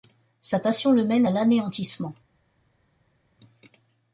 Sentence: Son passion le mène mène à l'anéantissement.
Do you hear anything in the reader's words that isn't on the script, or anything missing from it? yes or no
yes